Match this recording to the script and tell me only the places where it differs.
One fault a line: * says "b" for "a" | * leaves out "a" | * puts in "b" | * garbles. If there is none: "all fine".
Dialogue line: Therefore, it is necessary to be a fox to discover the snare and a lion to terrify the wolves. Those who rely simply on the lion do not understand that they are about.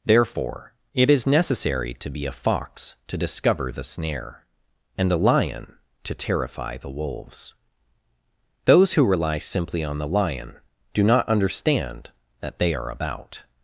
all fine